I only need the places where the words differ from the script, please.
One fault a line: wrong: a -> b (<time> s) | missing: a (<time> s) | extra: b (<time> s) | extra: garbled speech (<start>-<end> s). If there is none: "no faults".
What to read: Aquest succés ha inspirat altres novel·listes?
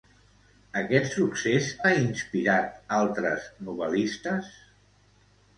no faults